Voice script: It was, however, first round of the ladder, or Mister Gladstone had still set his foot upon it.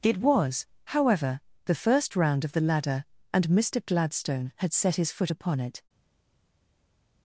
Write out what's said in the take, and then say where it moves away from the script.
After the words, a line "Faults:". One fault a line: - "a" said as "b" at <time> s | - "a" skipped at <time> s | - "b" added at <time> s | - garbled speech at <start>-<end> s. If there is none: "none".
It was, however, the first round of the ladder, and Mister Gladstone had set his foot upon it.
Faults:
- "the" added at 1.6 s
- "or" said as "and" at 3.3 s
- "still" skipped at 4.7 s